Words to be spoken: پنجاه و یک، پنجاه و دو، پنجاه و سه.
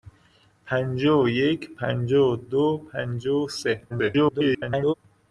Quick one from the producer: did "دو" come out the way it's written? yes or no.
yes